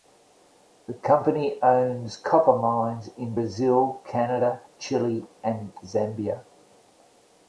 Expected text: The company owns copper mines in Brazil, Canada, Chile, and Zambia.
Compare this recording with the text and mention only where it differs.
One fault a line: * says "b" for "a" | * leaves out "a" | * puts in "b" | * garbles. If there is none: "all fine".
all fine